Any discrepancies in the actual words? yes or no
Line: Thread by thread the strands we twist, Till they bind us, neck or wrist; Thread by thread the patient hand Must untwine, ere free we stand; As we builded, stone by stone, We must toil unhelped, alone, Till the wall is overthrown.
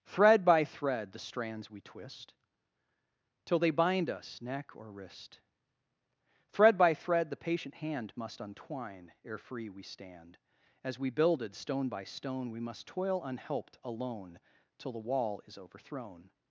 no